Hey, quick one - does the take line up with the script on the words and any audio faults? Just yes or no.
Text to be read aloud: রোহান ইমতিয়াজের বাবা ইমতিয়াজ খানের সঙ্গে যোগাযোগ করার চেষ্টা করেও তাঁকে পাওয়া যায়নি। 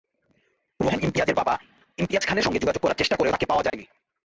no